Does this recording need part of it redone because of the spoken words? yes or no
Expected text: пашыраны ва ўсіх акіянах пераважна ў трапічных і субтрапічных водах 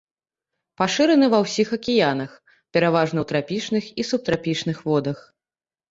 no